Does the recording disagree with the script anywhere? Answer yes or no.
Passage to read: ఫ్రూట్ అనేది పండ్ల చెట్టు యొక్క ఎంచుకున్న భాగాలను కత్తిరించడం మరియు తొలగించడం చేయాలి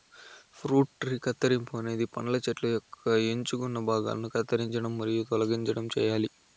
yes